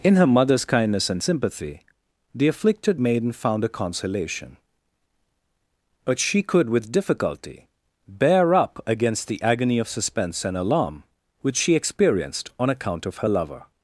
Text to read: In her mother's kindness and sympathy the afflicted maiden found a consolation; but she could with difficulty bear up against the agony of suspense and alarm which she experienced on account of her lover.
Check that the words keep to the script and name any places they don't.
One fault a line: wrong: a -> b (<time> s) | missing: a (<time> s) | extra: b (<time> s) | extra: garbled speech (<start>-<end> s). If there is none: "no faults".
no faults